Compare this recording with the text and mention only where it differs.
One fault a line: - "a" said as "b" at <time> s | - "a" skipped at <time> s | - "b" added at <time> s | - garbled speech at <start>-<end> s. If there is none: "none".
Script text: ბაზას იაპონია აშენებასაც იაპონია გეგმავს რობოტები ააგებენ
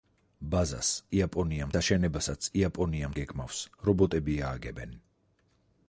none